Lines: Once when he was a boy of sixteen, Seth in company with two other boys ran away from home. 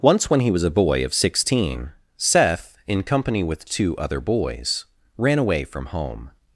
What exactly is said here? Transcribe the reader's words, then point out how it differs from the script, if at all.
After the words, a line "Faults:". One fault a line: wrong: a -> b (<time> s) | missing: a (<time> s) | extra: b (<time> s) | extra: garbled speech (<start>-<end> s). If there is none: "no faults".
Once when he was a boy of sixteen, Seth in company with two other boys ran away from home.
Faults:
no faults